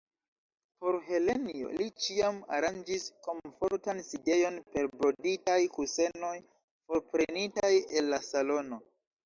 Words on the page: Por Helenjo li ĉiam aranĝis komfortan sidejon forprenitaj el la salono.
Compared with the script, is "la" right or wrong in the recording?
right